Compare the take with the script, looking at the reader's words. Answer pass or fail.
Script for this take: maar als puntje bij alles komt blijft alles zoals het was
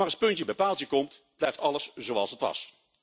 fail